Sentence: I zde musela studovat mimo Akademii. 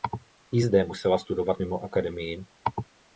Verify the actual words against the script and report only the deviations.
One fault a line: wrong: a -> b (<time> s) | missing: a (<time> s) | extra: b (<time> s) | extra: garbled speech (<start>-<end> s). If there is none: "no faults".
no faults